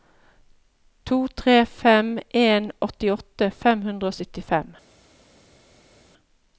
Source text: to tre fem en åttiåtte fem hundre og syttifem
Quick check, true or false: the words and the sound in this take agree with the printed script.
true